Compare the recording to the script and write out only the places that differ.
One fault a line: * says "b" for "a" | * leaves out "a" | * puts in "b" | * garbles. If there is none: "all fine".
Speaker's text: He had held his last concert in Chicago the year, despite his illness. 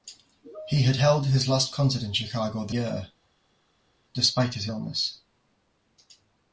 all fine